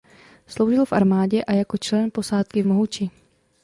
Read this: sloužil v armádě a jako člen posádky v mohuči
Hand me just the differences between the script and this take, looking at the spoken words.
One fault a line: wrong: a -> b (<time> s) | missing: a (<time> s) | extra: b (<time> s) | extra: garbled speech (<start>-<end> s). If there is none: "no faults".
no faults